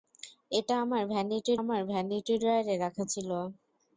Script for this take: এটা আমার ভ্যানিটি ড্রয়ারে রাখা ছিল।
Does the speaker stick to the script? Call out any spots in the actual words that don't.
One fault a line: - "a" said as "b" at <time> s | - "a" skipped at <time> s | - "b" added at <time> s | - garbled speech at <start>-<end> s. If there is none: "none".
- "আমার ভ্যানিটি" added at 1.6 s